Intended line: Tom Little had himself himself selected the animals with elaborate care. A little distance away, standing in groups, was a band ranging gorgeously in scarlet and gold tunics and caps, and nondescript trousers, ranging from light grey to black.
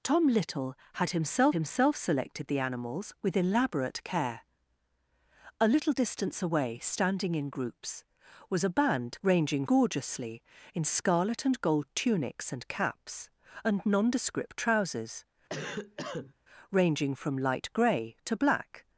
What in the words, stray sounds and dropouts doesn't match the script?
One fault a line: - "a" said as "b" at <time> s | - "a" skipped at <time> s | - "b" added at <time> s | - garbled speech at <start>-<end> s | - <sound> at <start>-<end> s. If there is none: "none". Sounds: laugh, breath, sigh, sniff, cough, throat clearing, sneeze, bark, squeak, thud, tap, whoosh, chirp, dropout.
- cough at 15.5-16.3 s